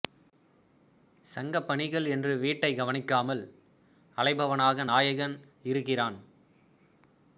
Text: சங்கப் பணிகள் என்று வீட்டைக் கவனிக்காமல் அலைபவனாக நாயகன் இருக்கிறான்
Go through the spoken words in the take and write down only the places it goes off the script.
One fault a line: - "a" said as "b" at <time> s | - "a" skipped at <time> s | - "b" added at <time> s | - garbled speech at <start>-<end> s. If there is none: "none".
none